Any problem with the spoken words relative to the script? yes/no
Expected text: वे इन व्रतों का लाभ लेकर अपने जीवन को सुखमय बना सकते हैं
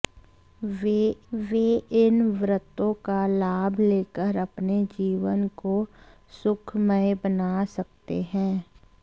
yes